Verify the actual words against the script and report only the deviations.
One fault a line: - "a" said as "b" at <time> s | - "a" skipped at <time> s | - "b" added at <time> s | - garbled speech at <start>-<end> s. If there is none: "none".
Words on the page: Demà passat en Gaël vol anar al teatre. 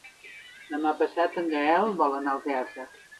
none